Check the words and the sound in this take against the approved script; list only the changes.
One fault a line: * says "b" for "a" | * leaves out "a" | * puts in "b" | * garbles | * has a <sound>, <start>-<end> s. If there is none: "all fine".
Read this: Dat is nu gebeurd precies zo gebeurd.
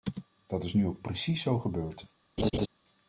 * says "ook" for "gebeurd"
* has a laugh, 2.4-2.7 s